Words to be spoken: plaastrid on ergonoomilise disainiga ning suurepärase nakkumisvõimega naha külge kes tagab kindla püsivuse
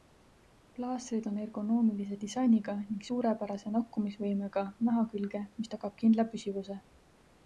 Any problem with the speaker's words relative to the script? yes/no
yes